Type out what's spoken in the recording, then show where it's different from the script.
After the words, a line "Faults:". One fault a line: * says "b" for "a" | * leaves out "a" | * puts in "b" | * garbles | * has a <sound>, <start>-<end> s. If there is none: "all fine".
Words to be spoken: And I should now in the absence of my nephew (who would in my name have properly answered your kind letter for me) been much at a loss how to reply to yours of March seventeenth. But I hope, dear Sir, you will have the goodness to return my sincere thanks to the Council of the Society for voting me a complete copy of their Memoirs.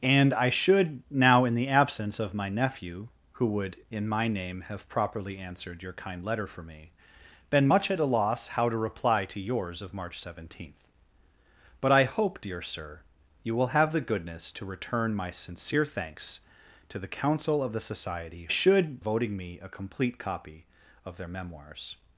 And I should now in the absence of my nephew (who would in my name have properly answered your kind letter for me) been much at a loss how to reply to yours of March seventeenth. But I hope, dear Sir, you will have the goodness to return my sincere thanks to the Council of the Society should voting me a complete copy of their Memoirs.
Faults:
* says "should" for "for"